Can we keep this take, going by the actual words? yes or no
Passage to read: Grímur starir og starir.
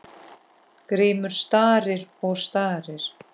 yes